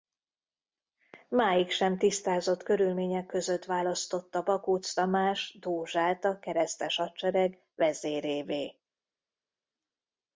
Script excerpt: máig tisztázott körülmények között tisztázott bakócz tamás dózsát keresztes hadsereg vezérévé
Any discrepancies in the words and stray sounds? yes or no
yes